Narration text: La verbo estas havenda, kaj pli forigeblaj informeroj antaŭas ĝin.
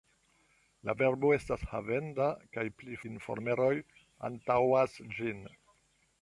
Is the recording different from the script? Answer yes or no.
yes